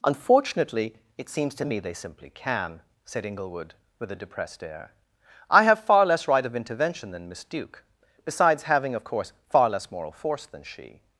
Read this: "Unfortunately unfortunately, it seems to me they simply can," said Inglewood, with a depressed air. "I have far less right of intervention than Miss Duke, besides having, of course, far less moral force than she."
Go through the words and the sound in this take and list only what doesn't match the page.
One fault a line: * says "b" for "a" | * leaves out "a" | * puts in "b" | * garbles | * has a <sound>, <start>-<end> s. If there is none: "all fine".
* leaves out "unfortunately"